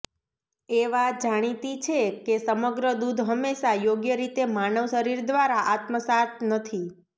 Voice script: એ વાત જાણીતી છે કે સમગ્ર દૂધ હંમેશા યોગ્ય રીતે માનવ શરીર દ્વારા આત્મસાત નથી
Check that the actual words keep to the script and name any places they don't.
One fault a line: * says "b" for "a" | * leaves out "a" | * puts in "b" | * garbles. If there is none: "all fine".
all fine